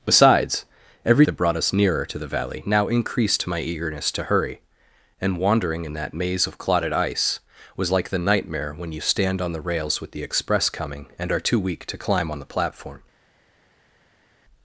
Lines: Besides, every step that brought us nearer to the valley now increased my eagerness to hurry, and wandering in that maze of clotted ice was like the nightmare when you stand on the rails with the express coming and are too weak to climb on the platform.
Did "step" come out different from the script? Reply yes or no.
yes